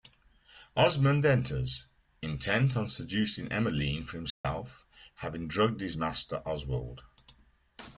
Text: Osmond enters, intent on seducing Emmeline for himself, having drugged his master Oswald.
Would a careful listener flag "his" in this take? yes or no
no